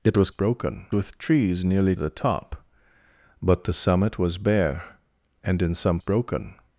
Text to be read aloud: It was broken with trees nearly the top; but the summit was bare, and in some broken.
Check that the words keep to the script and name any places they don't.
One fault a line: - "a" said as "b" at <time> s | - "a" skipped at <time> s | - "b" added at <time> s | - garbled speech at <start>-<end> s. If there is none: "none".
none